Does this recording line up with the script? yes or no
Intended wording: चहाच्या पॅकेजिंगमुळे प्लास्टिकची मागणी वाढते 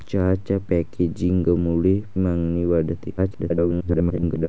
no